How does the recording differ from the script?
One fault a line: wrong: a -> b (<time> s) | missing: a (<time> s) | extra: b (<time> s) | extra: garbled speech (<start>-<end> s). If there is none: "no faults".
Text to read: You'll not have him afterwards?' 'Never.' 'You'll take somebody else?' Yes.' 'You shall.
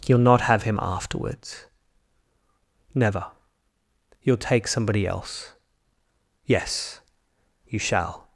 no faults